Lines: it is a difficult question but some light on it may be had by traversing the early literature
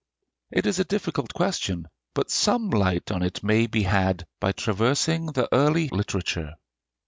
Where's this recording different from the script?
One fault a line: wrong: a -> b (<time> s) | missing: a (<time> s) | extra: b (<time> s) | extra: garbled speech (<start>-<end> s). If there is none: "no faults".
no faults